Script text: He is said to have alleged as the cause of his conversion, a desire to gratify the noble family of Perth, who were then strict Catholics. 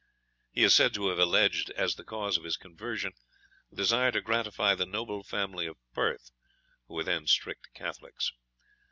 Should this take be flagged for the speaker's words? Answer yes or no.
no